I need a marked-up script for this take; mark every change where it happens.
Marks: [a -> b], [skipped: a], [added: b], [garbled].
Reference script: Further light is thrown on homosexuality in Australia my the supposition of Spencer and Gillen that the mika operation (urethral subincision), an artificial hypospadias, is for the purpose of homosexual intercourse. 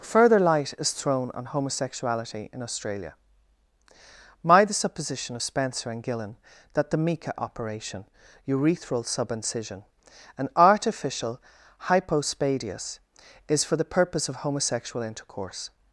Further light is thrown on homosexuality in Australia my the supposition of Spencer and Gillen that the mika operation (urethral subincision), an artificial hypospadias, is for the purpose of homosexual intercourse.